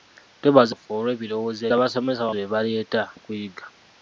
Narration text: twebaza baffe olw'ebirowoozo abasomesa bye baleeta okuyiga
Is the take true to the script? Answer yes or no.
yes